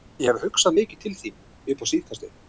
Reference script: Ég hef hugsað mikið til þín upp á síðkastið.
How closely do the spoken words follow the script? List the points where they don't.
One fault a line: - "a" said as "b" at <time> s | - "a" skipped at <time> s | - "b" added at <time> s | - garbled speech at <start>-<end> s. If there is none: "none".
none